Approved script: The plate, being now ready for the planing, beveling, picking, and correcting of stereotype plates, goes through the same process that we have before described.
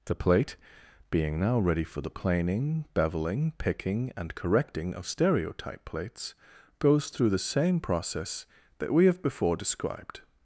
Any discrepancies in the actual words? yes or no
no